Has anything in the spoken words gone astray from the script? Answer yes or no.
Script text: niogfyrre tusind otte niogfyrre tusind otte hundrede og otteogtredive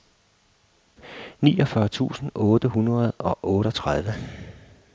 yes